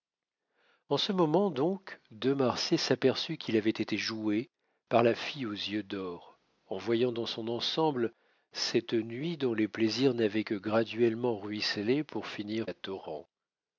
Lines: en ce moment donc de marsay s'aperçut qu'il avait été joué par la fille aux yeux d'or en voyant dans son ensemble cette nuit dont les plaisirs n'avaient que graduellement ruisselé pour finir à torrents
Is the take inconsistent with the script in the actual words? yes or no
no